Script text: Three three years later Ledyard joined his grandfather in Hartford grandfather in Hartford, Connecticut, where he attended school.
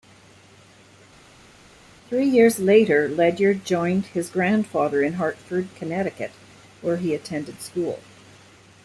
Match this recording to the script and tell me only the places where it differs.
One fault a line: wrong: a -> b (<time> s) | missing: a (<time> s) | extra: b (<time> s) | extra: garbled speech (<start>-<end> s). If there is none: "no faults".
missing: three (2.3 s)
missing: grandfather in Hartford (5.7 s)